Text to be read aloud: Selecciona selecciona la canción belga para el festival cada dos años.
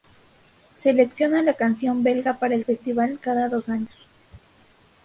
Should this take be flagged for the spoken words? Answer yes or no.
yes